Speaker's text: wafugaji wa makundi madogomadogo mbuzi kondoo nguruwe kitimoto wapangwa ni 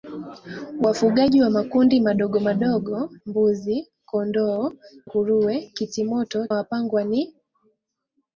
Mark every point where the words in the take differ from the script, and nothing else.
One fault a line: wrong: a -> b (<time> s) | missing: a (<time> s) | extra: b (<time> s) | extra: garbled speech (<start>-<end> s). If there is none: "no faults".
no faults